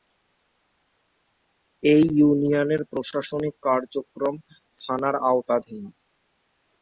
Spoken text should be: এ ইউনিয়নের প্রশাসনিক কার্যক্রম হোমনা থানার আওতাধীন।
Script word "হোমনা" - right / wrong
wrong